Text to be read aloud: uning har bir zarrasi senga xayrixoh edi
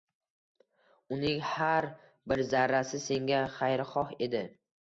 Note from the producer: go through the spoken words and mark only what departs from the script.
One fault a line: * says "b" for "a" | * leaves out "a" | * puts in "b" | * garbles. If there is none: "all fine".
all fine